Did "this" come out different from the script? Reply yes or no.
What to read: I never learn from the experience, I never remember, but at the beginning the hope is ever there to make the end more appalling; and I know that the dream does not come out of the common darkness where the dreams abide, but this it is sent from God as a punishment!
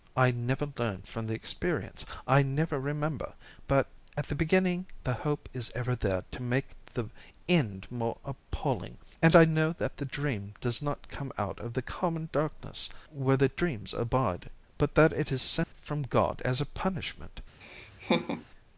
yes